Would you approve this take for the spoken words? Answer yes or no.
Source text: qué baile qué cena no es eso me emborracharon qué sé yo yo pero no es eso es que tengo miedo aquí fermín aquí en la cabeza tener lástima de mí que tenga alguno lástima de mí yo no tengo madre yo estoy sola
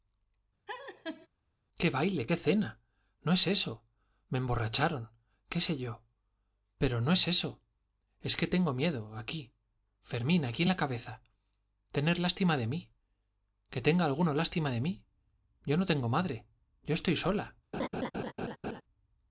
no